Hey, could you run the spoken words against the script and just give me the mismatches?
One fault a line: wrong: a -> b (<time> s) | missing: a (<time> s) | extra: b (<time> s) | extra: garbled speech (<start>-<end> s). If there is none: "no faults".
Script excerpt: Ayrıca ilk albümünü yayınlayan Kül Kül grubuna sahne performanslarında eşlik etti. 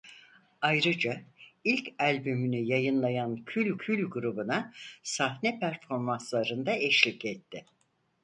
no faults